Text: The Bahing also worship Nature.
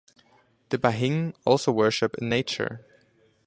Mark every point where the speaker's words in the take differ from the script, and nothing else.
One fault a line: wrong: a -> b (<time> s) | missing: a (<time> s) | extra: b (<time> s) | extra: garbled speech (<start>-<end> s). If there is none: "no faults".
extra: in (2.2 s)